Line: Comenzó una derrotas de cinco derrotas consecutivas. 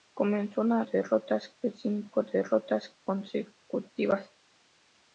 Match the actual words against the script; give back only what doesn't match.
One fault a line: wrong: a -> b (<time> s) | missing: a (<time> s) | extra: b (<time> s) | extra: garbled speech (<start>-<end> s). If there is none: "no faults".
no faults